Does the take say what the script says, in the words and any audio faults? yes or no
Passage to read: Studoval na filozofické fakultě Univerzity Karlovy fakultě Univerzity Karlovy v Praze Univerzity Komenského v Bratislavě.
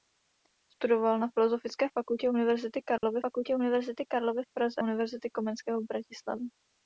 no